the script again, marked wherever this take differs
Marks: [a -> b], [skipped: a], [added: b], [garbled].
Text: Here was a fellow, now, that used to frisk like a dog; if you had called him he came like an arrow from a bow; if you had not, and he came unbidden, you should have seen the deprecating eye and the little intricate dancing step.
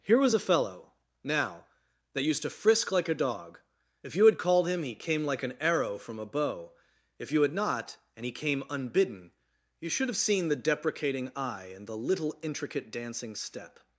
Here was a fellow, now, that used to frisk like a dog; if you had called him he came like an arrow from a bow; if you had not, and he came unbidden, you should have seen the deprecating eye and the little intricate dancing step.